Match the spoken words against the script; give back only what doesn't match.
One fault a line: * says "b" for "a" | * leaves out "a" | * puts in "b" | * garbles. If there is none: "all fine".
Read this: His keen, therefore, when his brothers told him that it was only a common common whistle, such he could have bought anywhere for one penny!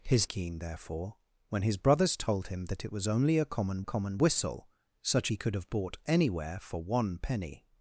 all fine